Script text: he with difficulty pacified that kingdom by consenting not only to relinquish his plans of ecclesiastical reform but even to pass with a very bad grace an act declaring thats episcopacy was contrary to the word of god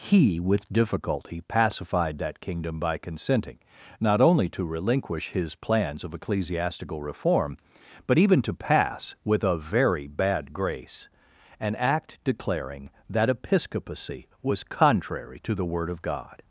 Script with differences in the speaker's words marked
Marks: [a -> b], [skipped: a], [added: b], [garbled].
he with difficulty pacified that kingdom by consenting not only to relinquish his plans of ecclesiastical reform but even to pass with a very bad grace an act declaring [thats -> that] episcopacy was contrary to the word of god